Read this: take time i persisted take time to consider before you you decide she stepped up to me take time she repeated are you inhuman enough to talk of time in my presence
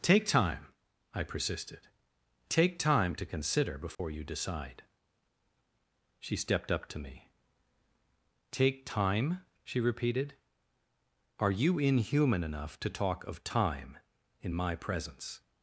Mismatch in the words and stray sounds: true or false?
true